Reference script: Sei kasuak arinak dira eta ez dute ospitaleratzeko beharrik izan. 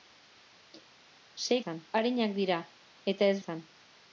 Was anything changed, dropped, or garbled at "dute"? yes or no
yes